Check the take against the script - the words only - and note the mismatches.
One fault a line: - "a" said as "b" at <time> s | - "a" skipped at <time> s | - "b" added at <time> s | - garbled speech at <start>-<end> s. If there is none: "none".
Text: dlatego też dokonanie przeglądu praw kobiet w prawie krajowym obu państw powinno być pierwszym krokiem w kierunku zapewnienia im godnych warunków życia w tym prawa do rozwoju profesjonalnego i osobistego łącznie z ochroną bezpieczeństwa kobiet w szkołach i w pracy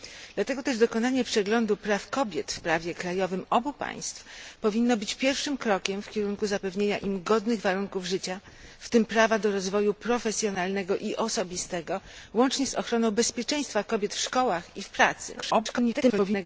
- garbled speech at 15.4-16.5 s